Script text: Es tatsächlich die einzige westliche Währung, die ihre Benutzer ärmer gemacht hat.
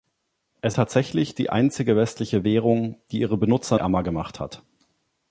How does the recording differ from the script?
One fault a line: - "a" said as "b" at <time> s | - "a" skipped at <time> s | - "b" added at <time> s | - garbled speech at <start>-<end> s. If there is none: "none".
none